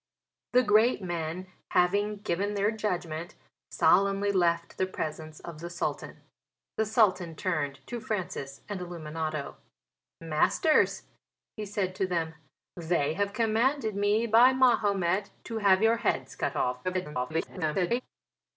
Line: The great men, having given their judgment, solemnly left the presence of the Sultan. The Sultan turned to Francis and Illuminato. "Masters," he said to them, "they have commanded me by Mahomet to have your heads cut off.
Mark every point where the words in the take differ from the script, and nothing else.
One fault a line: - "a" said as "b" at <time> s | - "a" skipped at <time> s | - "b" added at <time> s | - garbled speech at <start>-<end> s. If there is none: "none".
- garbled speech at 16.8-18.0 s